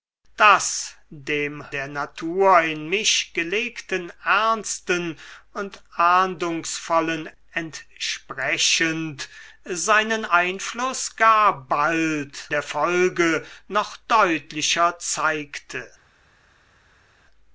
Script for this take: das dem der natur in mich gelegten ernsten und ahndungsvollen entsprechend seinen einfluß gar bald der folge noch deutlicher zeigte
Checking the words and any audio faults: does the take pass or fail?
pass